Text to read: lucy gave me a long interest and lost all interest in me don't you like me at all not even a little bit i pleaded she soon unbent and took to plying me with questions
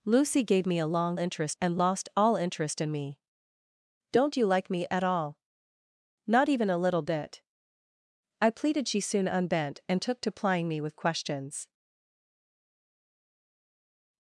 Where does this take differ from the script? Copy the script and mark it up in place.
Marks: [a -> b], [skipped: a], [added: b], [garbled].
lucy gave me a long interest and lost all interest in me don't you like me at all not even a little bit i pleaded she soon unbent and took to plying me with questions